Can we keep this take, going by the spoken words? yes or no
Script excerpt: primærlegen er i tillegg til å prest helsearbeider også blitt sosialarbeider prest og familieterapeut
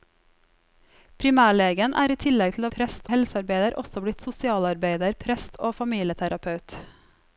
yes